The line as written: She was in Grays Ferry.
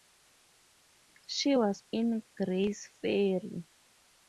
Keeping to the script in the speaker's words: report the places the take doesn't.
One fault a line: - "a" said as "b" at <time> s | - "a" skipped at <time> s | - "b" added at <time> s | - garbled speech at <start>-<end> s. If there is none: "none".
none